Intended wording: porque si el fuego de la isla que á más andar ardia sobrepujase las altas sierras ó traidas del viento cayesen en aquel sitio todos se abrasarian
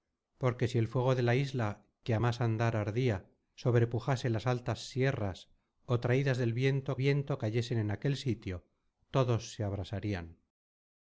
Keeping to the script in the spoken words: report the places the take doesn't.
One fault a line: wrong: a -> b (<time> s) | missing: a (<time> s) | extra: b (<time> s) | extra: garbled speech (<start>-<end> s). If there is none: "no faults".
extra: viento (7.0 s)